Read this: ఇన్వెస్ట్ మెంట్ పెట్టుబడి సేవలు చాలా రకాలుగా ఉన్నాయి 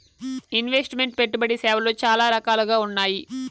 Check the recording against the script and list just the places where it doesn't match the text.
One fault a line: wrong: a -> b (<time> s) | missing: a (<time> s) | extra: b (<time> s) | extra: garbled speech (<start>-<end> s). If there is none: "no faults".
no faults